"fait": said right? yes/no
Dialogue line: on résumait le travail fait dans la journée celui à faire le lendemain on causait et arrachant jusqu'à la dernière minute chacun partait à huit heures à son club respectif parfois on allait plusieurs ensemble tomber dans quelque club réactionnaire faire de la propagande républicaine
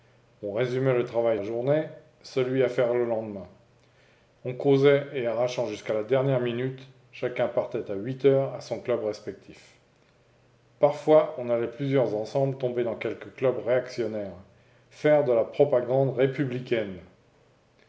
no